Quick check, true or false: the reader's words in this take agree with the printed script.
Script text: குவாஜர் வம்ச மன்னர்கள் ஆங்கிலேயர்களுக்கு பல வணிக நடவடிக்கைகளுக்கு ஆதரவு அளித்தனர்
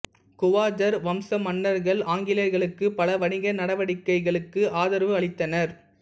true